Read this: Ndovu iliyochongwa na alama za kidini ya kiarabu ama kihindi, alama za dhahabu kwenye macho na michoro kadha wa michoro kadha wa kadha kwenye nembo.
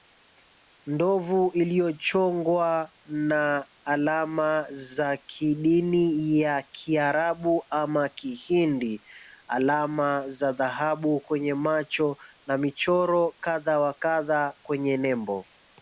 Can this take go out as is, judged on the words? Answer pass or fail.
fail